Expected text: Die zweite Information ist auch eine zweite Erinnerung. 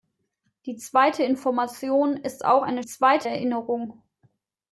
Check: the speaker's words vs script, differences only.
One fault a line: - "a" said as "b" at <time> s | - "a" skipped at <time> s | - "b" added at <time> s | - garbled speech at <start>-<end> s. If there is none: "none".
none